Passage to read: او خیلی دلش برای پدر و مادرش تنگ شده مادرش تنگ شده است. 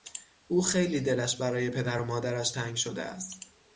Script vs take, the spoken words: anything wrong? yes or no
yes